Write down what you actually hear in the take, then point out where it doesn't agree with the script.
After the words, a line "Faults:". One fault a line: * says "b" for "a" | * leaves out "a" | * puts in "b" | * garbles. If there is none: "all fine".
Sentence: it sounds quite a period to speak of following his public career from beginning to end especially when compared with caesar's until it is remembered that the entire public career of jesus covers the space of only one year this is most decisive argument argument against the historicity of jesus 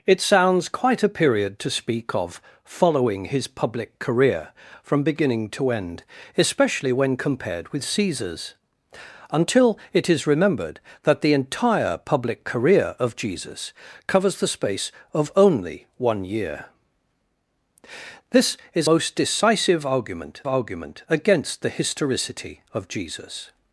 it sounds quite a period to speak of following his public career from beginning to end especially when compared with caesar's until it is remembered that the entire public career of jesus covers the space of only one year this is most decisive argument argument against the historicity of jesus
Faults:
all fine